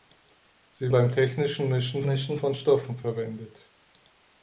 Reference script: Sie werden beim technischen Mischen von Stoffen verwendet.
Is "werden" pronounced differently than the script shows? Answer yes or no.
yes